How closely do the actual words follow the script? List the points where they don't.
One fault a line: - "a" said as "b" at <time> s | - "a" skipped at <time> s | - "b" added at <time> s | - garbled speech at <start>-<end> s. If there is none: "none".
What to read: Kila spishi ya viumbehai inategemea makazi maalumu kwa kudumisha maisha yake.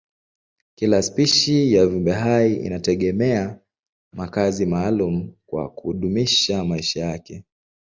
none